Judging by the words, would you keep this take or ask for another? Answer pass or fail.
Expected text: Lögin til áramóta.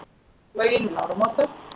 pass